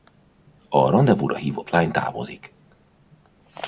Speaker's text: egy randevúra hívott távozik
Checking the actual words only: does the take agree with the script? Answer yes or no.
no